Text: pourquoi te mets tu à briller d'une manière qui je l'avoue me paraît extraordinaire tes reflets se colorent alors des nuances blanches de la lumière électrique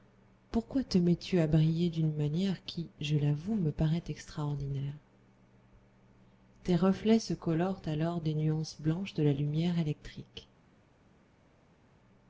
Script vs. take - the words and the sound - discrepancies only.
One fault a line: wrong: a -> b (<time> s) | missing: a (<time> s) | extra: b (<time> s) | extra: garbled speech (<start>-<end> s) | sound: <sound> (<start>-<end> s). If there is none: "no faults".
no faults